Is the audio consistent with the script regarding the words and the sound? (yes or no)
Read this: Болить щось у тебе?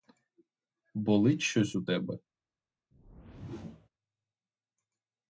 no